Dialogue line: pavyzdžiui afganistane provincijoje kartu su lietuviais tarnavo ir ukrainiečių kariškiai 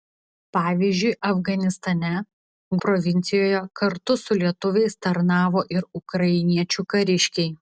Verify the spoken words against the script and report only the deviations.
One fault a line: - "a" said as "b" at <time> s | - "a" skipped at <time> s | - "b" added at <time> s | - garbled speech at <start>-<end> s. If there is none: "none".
none